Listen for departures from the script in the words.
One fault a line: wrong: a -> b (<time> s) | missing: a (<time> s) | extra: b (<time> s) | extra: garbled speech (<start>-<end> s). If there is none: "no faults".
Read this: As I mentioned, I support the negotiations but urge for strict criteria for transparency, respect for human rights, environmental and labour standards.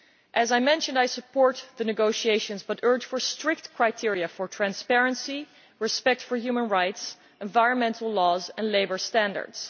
extra: laws (8.1 s)